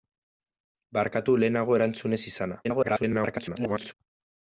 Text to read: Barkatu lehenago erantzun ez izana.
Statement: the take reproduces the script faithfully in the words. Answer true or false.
false